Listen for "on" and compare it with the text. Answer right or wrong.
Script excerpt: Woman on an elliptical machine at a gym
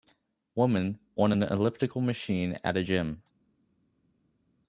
right